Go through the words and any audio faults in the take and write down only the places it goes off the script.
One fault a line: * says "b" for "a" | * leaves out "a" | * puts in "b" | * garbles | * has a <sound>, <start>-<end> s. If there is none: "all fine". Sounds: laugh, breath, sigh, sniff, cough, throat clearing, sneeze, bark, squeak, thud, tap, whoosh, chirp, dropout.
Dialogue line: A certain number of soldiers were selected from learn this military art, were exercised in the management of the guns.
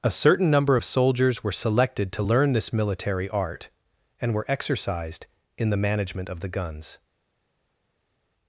* says "to" for "from"
* puts in "and"